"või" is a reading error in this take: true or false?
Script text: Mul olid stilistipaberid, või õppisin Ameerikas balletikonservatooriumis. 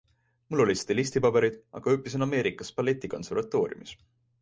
true